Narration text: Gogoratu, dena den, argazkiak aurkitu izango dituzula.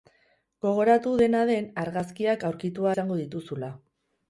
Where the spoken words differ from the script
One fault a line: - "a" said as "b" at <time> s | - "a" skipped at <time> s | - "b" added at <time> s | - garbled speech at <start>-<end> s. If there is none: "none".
none